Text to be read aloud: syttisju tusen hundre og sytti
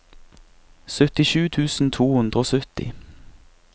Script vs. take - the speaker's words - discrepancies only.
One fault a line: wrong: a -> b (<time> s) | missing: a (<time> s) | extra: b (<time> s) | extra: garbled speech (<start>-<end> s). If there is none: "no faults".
extra: to (1.9 s)